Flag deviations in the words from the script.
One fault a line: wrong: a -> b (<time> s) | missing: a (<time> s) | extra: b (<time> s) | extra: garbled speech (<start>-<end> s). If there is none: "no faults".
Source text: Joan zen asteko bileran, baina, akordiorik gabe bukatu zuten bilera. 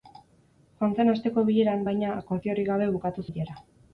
missing: zuten (3.3 s)